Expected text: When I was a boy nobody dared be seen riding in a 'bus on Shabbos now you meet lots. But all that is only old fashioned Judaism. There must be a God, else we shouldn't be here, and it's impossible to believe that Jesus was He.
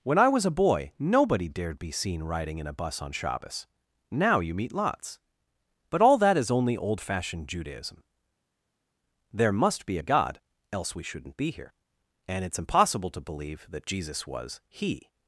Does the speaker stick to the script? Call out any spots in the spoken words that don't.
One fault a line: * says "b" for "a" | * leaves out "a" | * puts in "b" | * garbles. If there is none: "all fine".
all fine